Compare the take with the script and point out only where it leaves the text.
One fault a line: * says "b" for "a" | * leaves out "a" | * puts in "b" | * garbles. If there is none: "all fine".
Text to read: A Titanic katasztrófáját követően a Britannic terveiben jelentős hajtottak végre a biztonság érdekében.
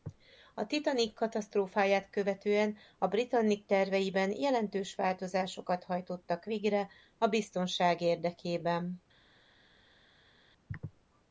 * puts in "változásokat"